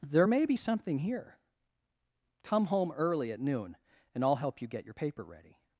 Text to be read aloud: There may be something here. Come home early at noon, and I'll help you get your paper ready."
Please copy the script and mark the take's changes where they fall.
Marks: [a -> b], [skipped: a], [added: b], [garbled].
There may be something here. Come home early at noon, and I'll help you get your paper ready."